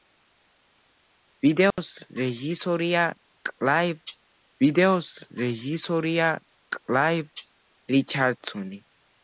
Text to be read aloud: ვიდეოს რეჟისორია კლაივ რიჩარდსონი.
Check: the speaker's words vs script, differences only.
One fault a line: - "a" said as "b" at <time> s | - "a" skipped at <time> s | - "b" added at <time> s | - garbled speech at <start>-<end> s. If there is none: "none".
- "ვიდეოს რეჟისორია კლაივ" added at 4.6 s